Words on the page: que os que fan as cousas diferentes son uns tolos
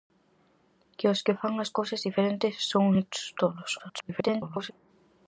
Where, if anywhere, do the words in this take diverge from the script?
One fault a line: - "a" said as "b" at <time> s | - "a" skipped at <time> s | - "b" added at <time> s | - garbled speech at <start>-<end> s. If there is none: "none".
- garbled speech at 3.8-4.7 s